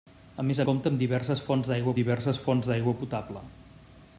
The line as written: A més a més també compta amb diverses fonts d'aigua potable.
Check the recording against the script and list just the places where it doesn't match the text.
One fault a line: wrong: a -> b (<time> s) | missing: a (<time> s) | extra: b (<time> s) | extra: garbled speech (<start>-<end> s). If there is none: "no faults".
wrong: més també compta amb -> compta amb diverses fonts d'aigua (0.7 s)